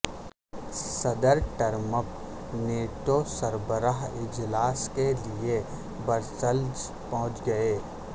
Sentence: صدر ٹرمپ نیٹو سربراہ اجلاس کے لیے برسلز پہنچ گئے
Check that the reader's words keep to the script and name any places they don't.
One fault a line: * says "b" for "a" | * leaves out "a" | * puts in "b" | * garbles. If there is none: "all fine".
all fine